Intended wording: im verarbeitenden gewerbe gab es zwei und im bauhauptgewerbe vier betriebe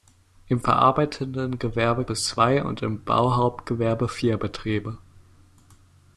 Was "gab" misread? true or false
true